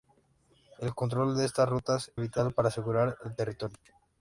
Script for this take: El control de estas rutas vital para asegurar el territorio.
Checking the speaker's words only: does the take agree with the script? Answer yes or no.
yes